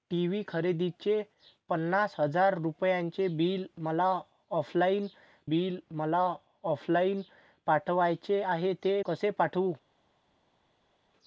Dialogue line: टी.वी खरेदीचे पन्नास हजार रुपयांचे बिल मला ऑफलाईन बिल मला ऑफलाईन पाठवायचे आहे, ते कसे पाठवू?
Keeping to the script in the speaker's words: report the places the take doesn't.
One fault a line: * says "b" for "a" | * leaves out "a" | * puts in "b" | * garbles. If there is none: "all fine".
all fine